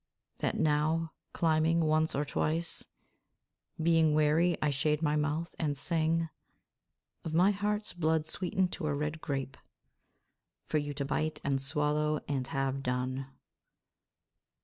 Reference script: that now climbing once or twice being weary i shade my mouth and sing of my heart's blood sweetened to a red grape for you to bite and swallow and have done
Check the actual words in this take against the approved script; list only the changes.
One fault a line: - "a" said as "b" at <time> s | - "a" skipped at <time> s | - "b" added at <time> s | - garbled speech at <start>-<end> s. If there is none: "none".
none